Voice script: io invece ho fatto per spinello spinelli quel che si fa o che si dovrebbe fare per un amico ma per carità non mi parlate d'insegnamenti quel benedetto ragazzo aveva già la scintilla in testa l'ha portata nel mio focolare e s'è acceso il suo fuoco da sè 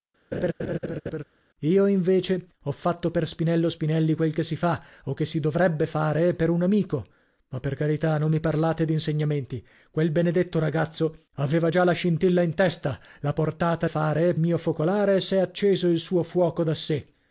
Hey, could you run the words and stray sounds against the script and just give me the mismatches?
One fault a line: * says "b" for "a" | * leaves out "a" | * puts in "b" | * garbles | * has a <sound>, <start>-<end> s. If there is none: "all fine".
* has a laugh, 0.3-1.2 s
* says "fare" for "nel"